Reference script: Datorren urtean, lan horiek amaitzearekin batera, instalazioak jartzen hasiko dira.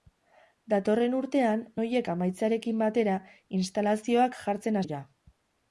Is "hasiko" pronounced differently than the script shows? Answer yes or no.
yes